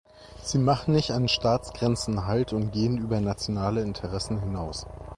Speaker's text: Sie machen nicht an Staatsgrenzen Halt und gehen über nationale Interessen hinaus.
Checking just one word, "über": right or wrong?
right